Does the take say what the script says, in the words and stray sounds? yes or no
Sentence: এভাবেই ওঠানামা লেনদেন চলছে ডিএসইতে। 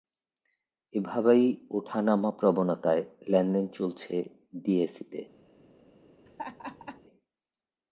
no